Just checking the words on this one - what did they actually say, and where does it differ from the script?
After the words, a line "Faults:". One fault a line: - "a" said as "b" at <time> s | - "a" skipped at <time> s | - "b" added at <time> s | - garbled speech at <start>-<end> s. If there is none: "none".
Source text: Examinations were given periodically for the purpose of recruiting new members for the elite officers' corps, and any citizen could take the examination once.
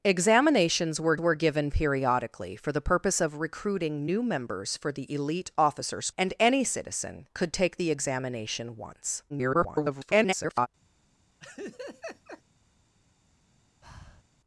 Examinations were were given periodically for the purpose of recruiting new members for the elite officers' and any citizen could take the examination once. [garbled]
Faults:
- "were" added at 1.2 s
- "corps" skipped at 6.1 s
- garbled speech at 9.3-10.7 s